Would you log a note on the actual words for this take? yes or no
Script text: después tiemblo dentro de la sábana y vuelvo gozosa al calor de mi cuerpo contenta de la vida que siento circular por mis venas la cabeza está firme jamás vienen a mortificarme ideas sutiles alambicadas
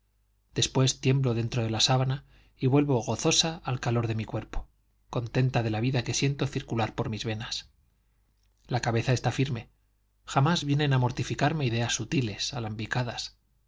no